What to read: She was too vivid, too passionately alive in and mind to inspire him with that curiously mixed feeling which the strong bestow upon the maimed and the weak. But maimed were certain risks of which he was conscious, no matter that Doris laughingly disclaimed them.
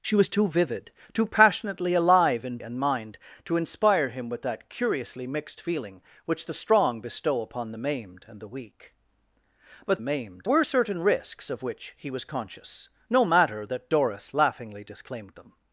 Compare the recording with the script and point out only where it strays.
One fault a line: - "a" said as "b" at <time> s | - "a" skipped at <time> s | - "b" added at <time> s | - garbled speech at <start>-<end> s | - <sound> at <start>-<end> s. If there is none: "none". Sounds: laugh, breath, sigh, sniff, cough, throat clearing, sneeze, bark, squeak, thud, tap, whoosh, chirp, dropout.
none